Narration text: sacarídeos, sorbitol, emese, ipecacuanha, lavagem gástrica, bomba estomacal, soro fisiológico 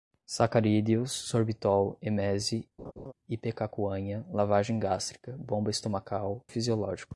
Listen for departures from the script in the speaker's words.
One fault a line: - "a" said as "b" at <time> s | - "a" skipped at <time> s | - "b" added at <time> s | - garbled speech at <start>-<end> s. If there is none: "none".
- "soro" skipped at 6.4 s